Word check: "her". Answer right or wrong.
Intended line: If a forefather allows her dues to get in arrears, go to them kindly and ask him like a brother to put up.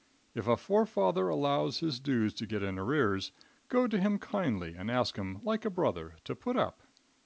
wrong